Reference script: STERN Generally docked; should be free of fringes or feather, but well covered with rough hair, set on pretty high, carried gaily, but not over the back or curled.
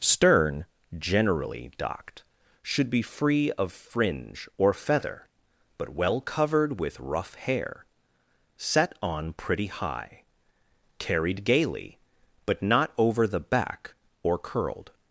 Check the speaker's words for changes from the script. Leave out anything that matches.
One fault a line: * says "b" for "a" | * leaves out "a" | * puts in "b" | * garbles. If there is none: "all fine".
* says "fringe" for "fringes"